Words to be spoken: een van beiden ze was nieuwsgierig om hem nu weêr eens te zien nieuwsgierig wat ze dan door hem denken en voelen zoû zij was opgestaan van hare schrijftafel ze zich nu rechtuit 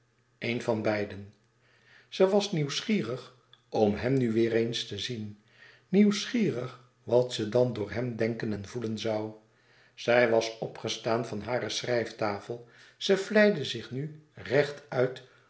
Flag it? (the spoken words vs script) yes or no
yes